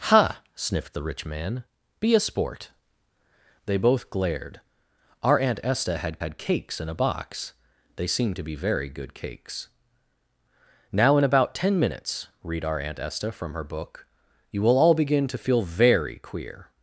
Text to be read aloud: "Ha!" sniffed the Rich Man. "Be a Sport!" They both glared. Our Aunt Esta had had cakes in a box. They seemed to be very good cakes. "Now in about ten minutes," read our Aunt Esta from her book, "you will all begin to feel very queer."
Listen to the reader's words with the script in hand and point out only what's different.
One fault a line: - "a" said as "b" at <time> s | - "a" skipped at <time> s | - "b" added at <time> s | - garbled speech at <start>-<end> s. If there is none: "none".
none